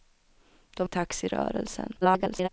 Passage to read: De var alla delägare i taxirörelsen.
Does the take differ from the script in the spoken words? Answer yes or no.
yes